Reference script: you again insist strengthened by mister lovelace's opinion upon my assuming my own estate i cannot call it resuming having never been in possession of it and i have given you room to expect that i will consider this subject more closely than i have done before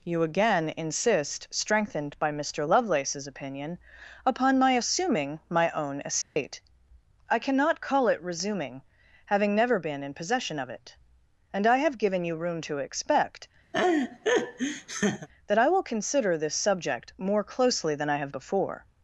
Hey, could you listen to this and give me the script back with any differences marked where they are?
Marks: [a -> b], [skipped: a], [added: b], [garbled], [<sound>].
you again insist strengthened by mister lovelace's opinion upon my assuming my own estate [dropout] i cannot call it resuming having never been in possession of it and i have given you room to expect [laugh] that i will consider this subject more closely than i have [skipped: done] before